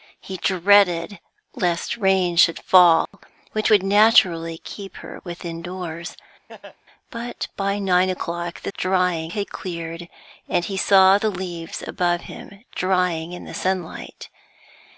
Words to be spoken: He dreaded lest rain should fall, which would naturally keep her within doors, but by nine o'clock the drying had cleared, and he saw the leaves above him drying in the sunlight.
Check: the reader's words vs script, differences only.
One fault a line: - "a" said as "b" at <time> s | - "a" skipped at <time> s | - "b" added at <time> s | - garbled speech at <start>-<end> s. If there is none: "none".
none